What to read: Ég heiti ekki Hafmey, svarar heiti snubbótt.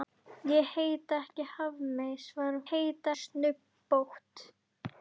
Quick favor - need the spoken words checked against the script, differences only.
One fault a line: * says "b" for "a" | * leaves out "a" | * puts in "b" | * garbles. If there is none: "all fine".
all fine